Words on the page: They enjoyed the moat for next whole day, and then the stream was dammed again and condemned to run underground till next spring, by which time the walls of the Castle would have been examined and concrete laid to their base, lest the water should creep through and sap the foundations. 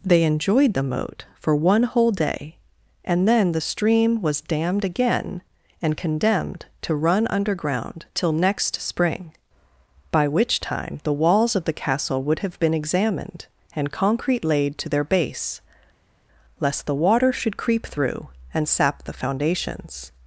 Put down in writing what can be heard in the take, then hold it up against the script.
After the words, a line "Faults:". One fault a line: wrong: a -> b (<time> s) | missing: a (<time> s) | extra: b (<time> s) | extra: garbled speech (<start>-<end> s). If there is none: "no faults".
They enjoyed the moat for one whole day, and then the stream was dammed again and condemned to run underground till next spring, by which time the walls of the Castle would have been examined and concrete laid to their base, lest the water should creep through and sap the foundations.
Faults:
wrong: next -> one (1.6 s)